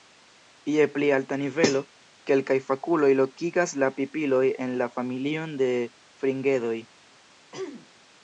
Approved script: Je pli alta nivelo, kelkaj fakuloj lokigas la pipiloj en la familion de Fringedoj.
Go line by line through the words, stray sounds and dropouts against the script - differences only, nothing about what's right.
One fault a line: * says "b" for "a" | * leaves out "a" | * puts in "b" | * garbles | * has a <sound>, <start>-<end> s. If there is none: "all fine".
* has a throat clearing, 7.5-7.9 s